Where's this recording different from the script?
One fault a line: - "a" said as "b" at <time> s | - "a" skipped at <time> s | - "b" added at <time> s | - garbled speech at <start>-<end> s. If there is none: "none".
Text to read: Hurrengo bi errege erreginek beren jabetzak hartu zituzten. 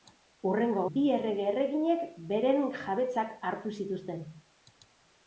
none